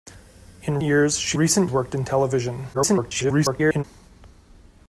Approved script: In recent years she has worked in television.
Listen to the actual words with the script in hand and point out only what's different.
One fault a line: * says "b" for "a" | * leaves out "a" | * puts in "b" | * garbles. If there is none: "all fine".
* leaves out "recent"
* says "recent" for "has"
* garbles